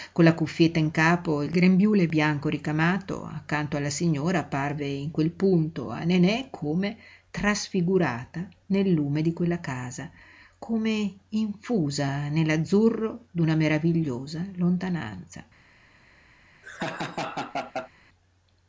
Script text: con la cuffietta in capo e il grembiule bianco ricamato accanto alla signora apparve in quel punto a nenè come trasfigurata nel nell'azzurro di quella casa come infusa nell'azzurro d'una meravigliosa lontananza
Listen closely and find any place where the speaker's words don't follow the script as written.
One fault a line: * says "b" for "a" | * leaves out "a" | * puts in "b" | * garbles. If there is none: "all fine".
* says "lume" for "nell'azzurro"